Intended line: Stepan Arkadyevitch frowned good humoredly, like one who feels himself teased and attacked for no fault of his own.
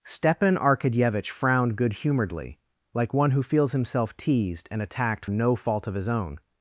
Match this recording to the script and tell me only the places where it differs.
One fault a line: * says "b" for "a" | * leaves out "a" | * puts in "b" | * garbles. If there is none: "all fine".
* leaves out "for"